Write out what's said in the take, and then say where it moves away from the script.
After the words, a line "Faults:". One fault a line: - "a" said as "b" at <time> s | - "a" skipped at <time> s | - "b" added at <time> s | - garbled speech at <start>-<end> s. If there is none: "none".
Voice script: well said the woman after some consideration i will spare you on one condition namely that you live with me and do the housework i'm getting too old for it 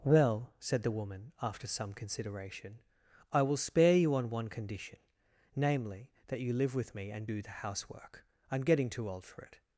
well said the woman after some consideration i will spare you on one condition namely that you live with me and do the housework i'm getting too old for it
Faults:
none